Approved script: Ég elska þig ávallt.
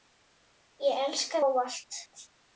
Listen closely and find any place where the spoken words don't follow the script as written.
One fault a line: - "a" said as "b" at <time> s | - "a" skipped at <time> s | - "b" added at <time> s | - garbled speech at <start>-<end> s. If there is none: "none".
- "þig" skipped at 1.4 s